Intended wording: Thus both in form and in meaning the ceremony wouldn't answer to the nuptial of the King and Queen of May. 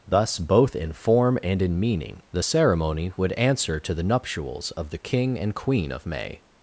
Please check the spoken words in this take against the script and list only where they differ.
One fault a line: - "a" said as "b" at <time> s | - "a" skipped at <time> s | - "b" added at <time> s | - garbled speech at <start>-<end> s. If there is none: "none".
- "wouldn't" said as "would" at 3.2 s
- "nuptial" said as "nuptials" at 4.0 s